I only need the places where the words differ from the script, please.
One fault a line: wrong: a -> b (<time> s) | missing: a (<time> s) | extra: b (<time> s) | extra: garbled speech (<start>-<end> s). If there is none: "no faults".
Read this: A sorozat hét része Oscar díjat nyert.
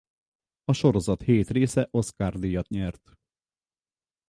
no faults